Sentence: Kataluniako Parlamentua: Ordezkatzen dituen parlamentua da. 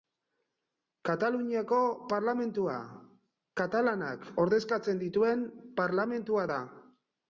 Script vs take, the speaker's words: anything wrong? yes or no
yes